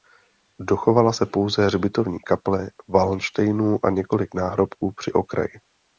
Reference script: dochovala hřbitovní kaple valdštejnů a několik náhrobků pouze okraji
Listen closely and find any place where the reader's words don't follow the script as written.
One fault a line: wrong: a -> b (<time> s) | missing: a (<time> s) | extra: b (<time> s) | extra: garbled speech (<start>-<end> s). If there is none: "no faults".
extra: se pouze (1.1 s)
wrong: pouze -> při (4.9 s)